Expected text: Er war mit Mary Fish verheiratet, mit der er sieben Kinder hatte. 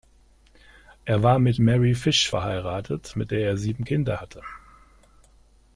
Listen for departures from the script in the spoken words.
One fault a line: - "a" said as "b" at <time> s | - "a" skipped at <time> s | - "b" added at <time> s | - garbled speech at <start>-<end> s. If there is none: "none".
none